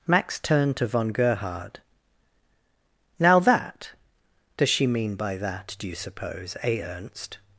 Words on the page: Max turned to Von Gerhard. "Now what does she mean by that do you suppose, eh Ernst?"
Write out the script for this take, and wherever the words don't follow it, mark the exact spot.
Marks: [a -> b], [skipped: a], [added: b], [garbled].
Max turned to Von Gerhard. "Now [what -> that] does she mean by that do you suppose, eh Ernst?"